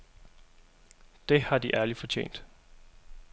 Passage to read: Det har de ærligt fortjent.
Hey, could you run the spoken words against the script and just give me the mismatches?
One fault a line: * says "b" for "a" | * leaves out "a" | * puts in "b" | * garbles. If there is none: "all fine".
all fine